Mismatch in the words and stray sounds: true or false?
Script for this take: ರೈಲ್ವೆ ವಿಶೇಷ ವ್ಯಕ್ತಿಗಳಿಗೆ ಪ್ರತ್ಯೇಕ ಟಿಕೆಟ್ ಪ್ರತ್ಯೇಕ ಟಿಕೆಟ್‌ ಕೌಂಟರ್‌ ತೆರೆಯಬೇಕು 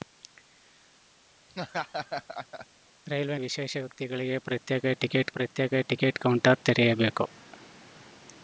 true